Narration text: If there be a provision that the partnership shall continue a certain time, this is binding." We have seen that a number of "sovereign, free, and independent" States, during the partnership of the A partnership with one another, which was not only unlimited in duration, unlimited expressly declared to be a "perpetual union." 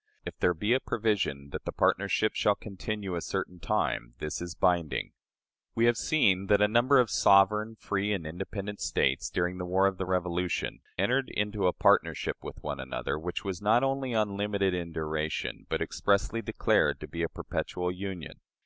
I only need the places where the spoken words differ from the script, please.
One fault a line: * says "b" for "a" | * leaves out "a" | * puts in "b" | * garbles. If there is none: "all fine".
* says "war" for "partnership"
* puts in "Revolution entered into"
* says "but" for "unlimited"